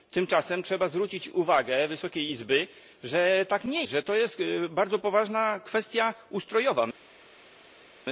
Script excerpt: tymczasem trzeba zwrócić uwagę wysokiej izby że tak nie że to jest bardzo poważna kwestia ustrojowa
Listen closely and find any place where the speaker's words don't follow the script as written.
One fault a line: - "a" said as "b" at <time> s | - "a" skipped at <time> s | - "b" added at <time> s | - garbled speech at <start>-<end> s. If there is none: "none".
none